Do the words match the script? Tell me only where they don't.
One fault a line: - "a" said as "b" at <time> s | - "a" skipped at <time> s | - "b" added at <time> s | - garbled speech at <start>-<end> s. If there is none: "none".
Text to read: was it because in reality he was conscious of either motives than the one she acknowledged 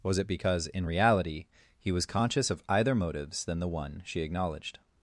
none